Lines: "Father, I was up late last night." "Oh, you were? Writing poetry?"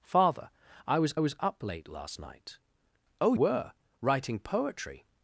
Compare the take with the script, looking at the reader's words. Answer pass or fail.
fail